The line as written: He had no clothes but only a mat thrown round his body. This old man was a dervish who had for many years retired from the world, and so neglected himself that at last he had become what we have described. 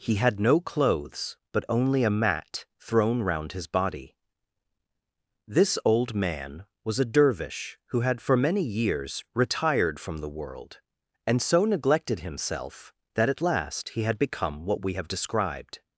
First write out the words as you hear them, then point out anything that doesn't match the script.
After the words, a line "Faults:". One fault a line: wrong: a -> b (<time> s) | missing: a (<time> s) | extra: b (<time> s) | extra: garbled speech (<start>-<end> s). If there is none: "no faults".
He had no clothes but only a mat thrown round his body. This old man was a dervish who had for many years retired from the world, and so neglected himself that at last he had become what we have described.
Faults:
no faults